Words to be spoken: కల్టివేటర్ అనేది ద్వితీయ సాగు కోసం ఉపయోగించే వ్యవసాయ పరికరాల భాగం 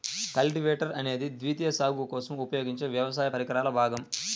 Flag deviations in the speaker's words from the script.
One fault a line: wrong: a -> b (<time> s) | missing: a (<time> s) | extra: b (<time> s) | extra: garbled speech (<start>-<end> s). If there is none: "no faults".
no faults